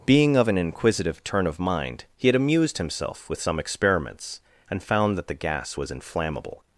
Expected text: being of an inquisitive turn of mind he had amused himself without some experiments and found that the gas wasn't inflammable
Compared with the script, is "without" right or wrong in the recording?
wrong